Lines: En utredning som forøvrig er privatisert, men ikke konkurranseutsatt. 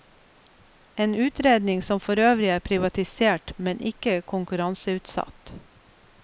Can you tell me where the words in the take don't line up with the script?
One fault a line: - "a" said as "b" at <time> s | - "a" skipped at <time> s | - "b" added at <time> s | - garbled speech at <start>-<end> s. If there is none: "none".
none